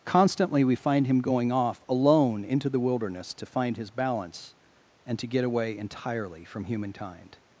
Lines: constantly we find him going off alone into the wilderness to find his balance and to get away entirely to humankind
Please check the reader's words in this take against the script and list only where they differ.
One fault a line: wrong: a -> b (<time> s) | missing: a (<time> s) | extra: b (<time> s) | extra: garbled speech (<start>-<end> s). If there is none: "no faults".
wrong: to -> from (6.4 s)